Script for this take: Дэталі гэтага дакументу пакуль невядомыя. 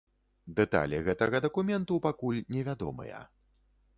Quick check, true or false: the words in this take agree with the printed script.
true